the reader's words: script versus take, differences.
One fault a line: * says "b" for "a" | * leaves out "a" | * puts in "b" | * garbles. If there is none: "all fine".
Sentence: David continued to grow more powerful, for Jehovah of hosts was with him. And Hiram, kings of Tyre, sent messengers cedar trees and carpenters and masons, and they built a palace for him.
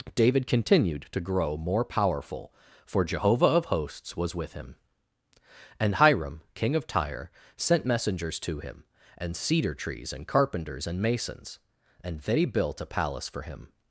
* says "king" for "kings"
* puts in "to him and"